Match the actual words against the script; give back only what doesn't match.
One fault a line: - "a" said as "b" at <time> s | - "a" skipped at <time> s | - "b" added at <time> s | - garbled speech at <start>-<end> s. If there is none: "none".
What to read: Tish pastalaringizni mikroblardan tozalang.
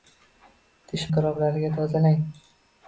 - "pastalaringizni" skipped at 1.0 s